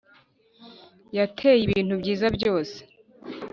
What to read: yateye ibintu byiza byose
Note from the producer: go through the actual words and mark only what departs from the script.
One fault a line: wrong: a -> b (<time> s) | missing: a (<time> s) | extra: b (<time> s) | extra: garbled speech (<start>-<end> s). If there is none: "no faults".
no faults